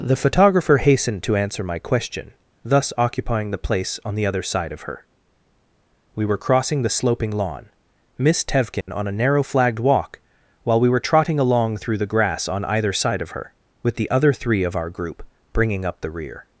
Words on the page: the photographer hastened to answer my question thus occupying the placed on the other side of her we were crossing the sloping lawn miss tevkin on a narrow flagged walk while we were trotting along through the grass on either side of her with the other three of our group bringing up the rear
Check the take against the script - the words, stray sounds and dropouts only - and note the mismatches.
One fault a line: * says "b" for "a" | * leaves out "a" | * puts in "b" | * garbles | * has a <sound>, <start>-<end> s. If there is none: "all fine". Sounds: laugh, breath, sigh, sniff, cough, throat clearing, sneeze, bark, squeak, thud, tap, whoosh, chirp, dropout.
* says "place" for "placed"
* has a dropout, 8.8-8.9 s